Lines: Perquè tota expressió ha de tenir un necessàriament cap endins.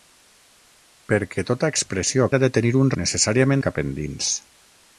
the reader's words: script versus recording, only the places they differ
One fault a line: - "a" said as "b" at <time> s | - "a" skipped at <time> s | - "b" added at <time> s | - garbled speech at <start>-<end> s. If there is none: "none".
none